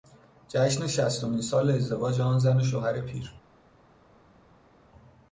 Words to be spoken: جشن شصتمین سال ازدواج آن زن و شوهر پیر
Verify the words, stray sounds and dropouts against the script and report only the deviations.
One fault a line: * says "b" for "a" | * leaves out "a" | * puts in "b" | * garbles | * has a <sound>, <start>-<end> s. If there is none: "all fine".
all fine